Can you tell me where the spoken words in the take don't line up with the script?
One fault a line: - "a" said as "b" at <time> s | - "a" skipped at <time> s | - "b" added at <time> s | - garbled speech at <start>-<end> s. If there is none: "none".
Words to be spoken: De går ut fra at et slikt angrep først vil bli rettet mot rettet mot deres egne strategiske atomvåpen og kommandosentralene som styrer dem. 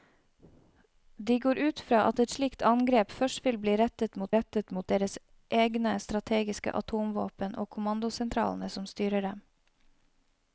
none